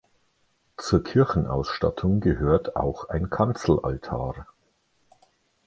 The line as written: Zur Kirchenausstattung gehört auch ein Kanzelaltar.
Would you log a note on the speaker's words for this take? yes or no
no